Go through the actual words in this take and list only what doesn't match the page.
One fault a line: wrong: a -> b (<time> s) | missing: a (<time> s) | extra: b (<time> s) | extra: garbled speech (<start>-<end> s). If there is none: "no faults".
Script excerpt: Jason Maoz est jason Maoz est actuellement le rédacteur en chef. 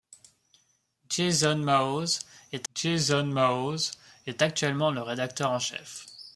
no faults